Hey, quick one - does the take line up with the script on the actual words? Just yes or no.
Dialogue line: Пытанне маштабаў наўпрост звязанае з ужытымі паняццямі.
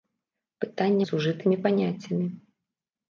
no